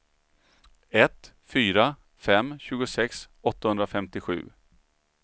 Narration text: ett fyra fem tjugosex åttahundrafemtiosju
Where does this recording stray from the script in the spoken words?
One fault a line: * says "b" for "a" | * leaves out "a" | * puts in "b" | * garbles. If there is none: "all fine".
all fine